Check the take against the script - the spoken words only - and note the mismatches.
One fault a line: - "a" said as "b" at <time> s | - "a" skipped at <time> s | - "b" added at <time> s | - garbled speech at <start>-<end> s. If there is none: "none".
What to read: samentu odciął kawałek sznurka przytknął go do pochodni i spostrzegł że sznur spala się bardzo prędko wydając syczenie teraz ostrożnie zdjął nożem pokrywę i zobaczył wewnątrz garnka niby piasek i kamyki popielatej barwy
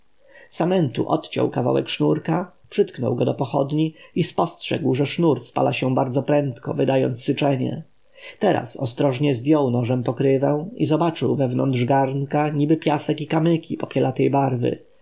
none